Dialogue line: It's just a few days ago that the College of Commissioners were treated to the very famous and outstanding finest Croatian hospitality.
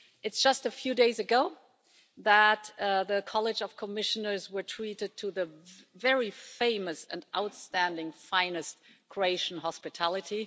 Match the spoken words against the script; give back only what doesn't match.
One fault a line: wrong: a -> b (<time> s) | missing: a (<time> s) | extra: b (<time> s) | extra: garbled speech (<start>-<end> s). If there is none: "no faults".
no faults